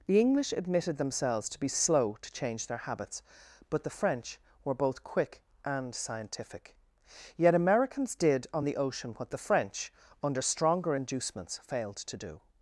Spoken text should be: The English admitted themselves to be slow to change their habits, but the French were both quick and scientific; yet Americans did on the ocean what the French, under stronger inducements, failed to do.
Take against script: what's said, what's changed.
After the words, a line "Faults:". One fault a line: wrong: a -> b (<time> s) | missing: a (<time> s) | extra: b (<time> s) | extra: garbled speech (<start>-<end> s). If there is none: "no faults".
The English admitted themselves to be slow to change their habits, but the French were both quick and scientific; yet Americans did on the ocean what the French, under stronger inducements, failed to do.
Faults:
no faults